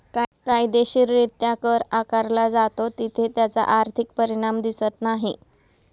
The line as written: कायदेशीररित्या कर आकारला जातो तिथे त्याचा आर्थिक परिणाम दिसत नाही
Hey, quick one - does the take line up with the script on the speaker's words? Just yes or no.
yes